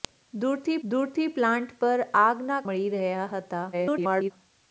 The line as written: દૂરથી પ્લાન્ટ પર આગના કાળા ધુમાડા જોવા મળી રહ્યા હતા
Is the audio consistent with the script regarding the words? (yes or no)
no